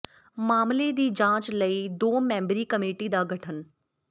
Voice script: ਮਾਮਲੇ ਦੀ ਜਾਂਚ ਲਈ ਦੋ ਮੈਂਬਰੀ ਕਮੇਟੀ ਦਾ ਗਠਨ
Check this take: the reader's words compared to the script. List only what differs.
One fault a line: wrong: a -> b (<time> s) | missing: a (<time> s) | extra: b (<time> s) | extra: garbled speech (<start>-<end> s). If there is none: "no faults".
no faults